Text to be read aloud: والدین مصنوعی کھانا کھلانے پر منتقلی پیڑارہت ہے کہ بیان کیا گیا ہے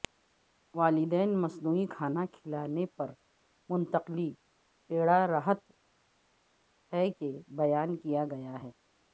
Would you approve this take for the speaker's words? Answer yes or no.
yes